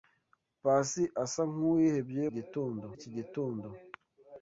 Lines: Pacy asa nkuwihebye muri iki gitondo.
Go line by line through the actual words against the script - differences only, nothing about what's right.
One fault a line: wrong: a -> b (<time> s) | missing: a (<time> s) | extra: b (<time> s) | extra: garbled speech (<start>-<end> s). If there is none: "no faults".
wrong: muri -> gitondo (2.4 s)